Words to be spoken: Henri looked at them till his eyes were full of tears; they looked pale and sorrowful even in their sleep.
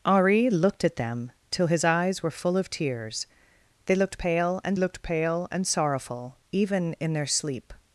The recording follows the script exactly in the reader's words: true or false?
false